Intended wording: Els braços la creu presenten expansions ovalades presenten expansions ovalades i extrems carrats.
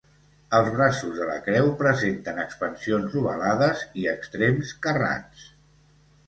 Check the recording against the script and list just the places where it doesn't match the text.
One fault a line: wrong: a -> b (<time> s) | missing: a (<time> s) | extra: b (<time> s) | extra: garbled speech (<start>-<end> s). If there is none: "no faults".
extra: de (1.2 s)
missing: presenten expansions ovalades (3.8 s)